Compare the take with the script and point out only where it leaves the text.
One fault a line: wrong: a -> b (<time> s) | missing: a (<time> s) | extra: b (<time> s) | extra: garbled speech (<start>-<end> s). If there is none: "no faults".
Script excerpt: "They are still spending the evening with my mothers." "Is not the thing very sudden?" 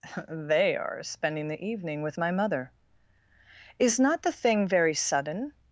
missing: still (1.0 s)
wrong: mothers -> mother (2.3 s)